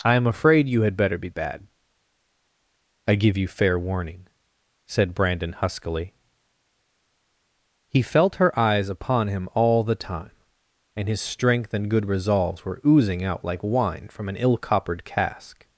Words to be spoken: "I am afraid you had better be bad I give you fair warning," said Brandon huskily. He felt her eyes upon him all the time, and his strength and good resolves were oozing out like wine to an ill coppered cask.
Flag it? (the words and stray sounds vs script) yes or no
yes